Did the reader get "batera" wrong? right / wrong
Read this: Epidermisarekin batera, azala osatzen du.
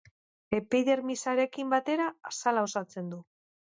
right